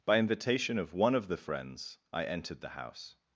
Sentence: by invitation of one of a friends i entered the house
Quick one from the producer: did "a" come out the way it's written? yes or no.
no